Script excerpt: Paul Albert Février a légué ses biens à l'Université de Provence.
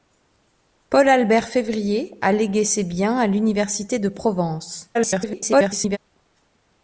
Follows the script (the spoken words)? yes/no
no